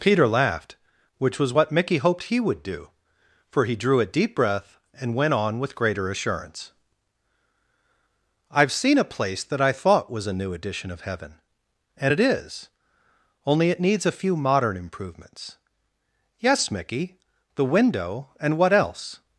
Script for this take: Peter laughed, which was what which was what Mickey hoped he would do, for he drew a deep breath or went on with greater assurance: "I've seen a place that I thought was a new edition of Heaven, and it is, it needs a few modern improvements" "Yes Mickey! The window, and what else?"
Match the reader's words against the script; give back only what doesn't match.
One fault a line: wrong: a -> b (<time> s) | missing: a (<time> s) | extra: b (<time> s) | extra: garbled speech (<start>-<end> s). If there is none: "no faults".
missing: which was what (1.7 s)
wrong: or -> and (5.0 s)
extra: only (13.5 s)